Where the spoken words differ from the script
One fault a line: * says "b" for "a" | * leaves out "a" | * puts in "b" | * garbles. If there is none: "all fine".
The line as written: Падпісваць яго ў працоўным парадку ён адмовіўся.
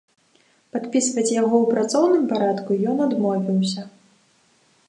all fine